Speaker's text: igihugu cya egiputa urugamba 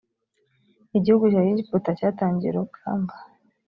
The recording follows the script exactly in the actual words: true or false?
false